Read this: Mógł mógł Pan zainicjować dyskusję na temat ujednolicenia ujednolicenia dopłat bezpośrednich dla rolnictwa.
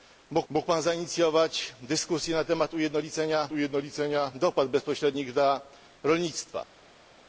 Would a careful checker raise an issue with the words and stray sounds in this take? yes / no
no